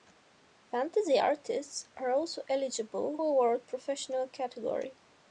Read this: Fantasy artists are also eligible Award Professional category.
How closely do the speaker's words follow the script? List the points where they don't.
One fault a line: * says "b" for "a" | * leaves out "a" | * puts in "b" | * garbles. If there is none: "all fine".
all fine